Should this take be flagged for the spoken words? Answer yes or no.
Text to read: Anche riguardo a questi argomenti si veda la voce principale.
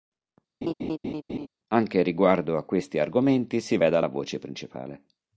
no